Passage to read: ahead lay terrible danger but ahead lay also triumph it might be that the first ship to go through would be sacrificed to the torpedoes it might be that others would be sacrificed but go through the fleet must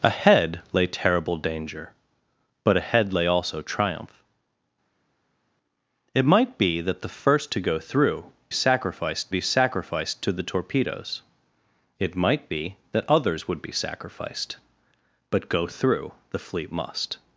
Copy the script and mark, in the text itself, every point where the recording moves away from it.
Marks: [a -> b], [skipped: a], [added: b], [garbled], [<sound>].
ahead lay terrible danger but ahead lay also triumph it might be that the first [skipped: ship] to go through [would -> sacrificed] be sacrificed to the torpedoes it might be that others would be sacrificed but go through the fleet must